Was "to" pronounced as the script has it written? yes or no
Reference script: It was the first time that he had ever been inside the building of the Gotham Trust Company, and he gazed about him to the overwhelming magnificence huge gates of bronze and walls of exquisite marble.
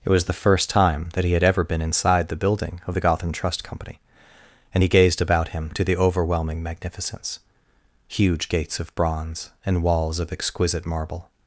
yes